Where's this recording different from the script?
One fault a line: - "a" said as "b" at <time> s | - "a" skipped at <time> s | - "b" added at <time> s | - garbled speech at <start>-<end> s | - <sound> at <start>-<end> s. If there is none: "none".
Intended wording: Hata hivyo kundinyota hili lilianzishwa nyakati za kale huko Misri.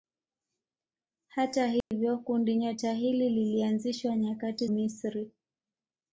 - dropout at 1.8-1.9 s
- "za kale huko" skipped at 4.7 s